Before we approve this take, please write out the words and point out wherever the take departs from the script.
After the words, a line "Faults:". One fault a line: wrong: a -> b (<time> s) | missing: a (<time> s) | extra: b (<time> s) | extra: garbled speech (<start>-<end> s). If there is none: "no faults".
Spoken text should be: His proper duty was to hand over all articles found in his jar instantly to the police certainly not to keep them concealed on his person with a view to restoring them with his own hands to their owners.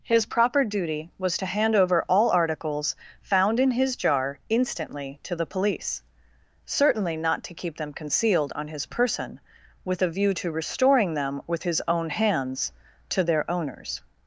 His proper duty was to hand over all articles found in his jar instantly to the police certainly not to keep them concealed on his person with a view to restoring them with his own hands to their owners.
Faults:
no faults